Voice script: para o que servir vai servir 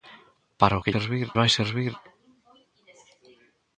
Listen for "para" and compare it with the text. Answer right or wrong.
right